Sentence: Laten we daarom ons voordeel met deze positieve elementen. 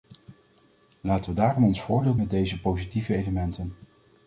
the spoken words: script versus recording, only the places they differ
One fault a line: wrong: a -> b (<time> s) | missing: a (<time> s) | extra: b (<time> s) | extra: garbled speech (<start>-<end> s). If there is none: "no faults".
no faults